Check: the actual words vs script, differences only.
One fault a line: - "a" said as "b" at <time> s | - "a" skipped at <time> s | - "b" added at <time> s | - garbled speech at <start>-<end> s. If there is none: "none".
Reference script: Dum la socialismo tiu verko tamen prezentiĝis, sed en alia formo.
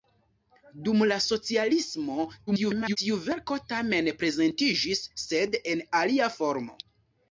- garbled speech at 2.5-3.0 s